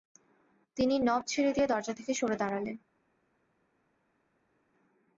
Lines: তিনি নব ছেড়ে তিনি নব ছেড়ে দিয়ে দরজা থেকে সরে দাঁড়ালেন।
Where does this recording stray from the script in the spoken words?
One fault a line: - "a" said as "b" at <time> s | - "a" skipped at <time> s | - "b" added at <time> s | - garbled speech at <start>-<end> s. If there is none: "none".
- "তিনি নব ছেড়ে" skipped at 1.5 s